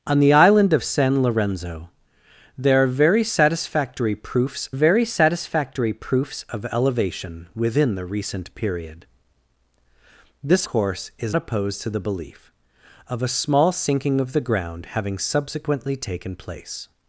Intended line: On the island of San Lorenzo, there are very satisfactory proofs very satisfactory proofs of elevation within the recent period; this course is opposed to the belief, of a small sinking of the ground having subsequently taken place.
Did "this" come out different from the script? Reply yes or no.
no